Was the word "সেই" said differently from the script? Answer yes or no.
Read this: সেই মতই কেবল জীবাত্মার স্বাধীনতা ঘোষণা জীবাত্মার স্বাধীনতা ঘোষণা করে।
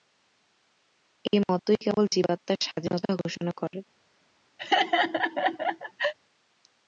yes